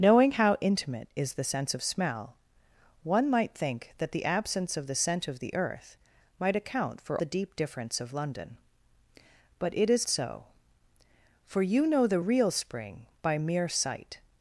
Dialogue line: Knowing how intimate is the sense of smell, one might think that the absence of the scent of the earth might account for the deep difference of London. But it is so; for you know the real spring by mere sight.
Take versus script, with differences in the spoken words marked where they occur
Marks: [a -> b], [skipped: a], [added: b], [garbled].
Knowing how intimate is the sense of smell, one might think that the absence of the scent of the earth might account for the deep difference of London. But it is so; for you know the real spring by mere sight.